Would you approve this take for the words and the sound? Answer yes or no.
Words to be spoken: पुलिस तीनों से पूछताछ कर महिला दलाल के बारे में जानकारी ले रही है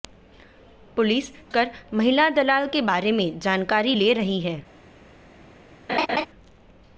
no